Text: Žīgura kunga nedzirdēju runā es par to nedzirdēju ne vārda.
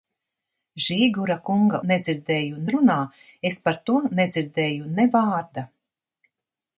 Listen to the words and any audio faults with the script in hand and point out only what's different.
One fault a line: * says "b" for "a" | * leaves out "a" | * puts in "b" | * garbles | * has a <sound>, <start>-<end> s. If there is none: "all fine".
all fine